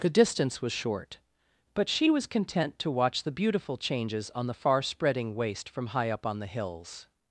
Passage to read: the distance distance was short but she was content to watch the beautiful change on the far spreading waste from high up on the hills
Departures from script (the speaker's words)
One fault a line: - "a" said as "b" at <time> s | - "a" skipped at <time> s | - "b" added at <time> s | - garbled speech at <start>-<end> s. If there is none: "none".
- "distance" skipped at 0.6 s
- "change" said as "changes" at 3.8 s